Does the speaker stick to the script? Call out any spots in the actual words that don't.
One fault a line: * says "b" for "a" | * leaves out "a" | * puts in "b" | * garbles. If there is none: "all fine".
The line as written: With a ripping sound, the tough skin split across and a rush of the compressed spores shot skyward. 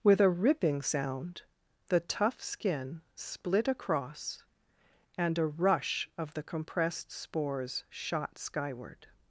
all fine